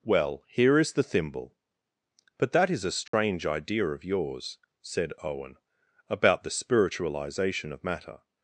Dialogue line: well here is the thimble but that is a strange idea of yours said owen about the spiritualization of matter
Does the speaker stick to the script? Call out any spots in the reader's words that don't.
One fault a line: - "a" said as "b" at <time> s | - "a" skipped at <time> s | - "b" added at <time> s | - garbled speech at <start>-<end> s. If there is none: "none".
none